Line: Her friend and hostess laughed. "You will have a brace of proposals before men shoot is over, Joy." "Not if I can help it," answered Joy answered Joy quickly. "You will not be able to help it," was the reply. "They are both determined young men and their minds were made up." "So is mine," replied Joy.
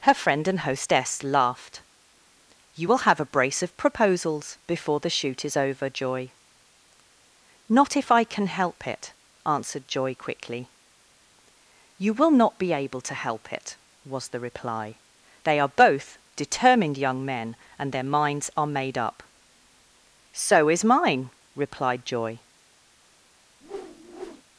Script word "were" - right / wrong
wrong